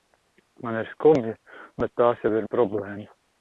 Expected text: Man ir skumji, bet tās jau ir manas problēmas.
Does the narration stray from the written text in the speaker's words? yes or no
yes